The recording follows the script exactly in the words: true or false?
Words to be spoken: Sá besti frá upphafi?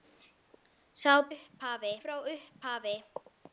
false